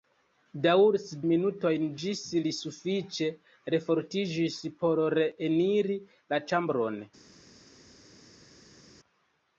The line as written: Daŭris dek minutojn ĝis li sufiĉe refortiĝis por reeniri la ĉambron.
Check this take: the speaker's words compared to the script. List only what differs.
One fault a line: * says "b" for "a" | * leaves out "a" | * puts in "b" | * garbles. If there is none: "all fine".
* leaves out "dek"